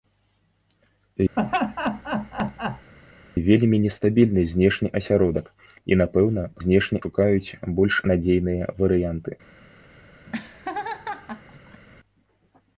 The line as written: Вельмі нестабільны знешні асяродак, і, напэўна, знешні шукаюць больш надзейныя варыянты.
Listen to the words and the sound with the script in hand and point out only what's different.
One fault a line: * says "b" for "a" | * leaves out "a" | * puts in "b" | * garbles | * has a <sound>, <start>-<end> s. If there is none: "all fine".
* has a laugh, 1.4-2.9 s
* has a laugh, 10.3-11.8 s